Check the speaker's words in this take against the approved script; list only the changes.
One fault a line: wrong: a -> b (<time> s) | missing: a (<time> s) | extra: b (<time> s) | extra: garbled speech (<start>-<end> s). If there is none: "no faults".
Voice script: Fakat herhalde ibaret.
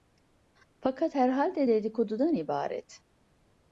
extra: dedikodudan (1.7 s)